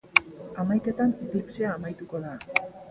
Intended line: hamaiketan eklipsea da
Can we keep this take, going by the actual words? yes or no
no